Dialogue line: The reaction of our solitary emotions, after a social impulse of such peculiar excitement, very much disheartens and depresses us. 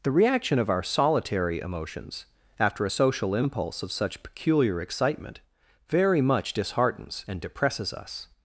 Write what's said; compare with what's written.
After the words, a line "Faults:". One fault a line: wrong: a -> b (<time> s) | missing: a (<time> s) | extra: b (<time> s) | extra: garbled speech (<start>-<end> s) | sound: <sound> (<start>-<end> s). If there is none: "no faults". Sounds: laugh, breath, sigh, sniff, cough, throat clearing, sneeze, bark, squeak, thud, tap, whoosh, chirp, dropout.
The reaction of our solitary emotions, after a social impulse of such peculiar excitement, very much disheartens and depresses us.
Faults:
no faults